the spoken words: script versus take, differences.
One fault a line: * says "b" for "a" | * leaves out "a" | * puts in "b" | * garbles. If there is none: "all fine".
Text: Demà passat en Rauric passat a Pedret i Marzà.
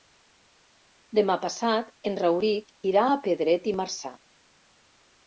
* says "irà" for "passat"